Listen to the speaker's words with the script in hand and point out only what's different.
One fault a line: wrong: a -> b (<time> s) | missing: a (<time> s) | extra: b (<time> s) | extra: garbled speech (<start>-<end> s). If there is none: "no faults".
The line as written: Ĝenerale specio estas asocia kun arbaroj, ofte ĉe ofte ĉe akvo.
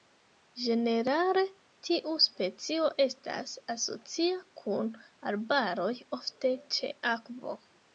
extra: tiu (1.9 s)
missing: ofte ĉe (7.0 s)